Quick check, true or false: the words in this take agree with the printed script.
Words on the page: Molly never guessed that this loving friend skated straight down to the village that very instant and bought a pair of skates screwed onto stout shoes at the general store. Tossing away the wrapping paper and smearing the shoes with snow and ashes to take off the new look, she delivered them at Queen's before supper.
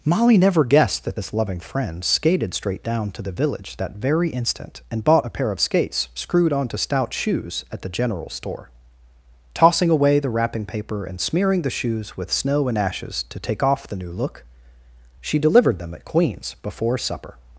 true